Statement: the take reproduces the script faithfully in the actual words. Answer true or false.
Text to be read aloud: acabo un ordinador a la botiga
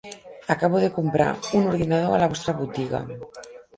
false